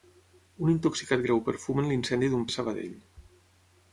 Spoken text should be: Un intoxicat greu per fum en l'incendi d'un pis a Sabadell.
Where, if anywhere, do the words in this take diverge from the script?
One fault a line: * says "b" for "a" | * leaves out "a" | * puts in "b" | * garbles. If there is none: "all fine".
* leaves out "pis"